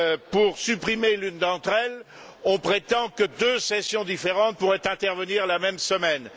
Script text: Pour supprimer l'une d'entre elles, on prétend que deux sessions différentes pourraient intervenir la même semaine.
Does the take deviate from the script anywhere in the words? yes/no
no